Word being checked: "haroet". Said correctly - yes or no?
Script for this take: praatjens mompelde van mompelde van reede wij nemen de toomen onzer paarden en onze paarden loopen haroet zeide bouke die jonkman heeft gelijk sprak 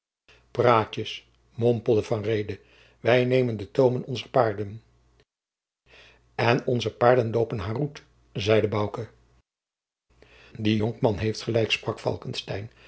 yes